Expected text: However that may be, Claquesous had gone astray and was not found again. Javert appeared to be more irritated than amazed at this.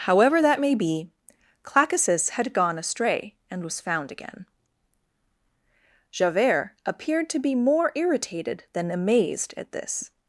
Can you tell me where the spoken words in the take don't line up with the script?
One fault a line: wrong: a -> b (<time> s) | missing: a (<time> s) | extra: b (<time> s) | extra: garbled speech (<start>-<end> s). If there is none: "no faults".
missing: not (3.8 s)